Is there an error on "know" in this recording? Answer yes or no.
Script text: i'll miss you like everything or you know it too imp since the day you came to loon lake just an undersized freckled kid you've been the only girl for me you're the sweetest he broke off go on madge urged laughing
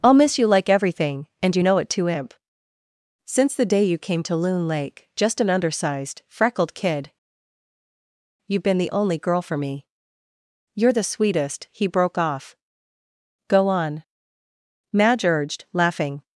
no